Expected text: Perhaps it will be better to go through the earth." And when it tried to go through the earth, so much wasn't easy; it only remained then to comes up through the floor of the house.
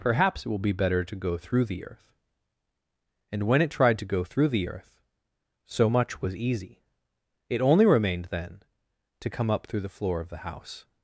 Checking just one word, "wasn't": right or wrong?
wrong